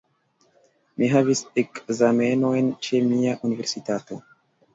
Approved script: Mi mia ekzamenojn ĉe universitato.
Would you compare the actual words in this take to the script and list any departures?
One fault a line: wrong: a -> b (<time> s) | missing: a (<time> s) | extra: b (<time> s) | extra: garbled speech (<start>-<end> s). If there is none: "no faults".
wrong: mia -> havis (1.1 s)
extra: mia (3.1 s)